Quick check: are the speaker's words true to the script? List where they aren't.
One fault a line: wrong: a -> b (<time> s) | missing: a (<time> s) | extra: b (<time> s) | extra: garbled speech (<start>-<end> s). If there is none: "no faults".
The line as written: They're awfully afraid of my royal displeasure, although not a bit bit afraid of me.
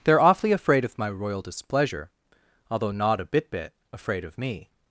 no faults